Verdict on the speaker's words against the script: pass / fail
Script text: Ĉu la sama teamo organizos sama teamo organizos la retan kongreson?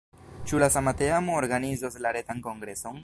fail